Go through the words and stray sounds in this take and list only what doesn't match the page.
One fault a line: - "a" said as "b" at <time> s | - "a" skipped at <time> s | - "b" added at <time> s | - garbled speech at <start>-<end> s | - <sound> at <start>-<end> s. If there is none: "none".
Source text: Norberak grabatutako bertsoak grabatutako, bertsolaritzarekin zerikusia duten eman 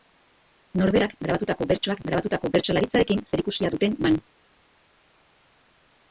none